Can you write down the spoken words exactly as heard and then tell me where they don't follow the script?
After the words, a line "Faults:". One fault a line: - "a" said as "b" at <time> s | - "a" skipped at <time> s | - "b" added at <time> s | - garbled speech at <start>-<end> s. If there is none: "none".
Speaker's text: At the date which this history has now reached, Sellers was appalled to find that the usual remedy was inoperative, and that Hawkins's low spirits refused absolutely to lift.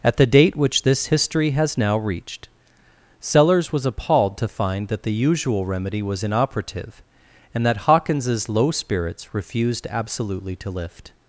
At the date which this history has now reached, Sellers was appalled to find that the usual remedy was inoperative, and that Hawkins's low spirits refused absolutely to lift.
Faults:
none